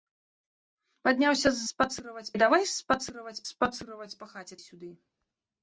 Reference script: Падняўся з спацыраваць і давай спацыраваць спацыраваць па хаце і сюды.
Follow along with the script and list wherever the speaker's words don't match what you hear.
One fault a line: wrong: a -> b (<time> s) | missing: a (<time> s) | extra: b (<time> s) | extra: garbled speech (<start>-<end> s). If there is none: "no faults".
no faults